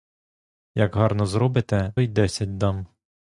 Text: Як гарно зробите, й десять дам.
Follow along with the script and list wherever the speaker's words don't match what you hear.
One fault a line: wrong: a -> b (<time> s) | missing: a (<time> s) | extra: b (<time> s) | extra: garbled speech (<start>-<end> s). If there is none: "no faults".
no faults